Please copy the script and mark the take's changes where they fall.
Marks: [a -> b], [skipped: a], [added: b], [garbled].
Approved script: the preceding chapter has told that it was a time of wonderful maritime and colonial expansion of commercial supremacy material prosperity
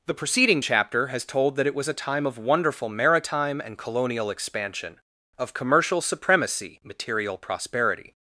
the preceding chapter has told that it was a time of wonderful maritime and colonial expansion of commercial supremacy material prosperity